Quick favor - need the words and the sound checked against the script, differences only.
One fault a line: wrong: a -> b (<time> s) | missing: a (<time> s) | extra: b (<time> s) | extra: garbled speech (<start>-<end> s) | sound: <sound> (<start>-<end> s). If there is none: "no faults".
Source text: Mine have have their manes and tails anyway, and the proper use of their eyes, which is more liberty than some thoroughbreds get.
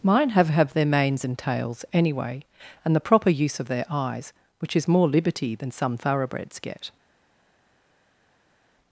no faults